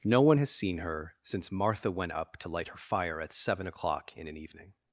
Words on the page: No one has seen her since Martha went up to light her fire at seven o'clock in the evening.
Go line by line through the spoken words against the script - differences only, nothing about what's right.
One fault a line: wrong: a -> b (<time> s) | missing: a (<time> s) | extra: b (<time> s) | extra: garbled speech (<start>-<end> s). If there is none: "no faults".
wrong: the -> an (4.3 s)